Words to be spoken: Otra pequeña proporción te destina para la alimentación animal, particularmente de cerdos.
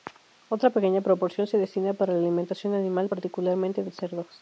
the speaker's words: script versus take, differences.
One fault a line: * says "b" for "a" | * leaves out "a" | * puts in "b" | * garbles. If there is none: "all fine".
* says "se" for "te"